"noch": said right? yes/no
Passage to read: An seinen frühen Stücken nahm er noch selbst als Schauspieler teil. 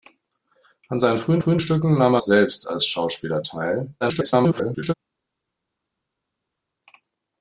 no